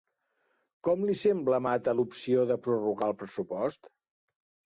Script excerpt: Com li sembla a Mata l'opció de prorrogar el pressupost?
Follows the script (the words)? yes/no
yes